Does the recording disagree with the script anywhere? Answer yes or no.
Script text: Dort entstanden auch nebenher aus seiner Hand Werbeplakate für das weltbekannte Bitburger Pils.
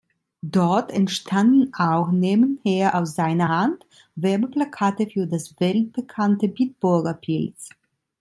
no